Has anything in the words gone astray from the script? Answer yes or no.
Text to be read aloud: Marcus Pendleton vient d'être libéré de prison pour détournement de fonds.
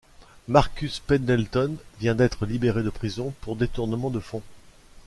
no